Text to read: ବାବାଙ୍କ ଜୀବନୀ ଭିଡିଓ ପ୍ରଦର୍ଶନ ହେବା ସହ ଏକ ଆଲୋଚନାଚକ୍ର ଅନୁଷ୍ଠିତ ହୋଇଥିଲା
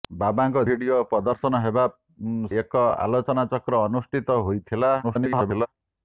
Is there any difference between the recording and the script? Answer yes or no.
yes